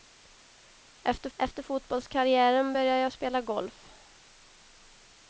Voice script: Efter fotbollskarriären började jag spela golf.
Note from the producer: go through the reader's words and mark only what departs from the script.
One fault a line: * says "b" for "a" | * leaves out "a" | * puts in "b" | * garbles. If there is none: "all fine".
* puts in "efter"